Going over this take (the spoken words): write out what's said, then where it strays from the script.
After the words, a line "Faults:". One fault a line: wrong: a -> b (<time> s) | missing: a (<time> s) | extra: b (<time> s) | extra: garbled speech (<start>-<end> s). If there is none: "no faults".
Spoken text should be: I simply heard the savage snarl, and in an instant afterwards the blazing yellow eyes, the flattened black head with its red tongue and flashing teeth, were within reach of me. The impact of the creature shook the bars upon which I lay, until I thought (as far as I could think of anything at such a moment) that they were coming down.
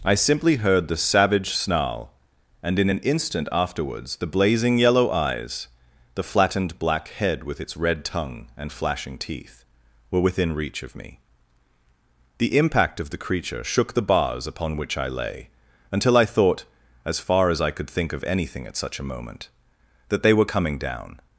I simply heard the savage snarl, and in an instant afterwards the blazing yellow eyes, the flattened black head with its red tongue and flashing teeth, were within reach of me. The impact of the creature shook the bars upon which I lay, until I thought (as far as I could think of anything at such a moment) that they were coming down.
Faults:
no faults